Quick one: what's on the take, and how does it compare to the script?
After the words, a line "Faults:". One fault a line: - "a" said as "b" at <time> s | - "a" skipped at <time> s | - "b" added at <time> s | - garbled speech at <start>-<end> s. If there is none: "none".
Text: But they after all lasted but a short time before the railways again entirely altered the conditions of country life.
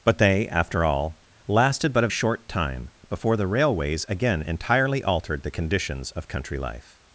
But they after all lasted but a short time before the railways again entirely altered the conditions of country life.
Faults:
none